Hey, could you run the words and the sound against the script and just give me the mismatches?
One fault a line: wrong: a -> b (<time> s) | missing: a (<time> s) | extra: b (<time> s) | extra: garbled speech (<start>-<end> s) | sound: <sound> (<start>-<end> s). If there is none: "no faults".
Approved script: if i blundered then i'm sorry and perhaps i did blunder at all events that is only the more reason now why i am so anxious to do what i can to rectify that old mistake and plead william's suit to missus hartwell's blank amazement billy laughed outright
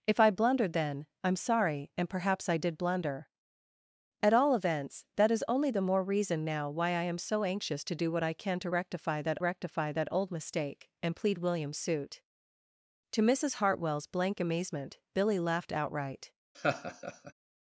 extra: rectify that (9.4 s)
sound: laugh (16.5-17.3 s)